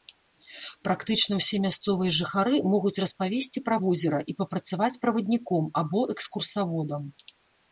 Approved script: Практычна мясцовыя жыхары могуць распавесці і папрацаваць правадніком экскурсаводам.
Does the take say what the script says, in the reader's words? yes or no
no